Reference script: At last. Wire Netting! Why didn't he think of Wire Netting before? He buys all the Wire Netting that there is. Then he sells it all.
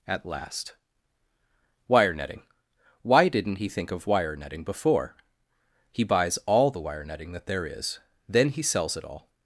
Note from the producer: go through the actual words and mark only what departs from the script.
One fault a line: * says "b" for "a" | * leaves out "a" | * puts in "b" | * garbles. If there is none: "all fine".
all fine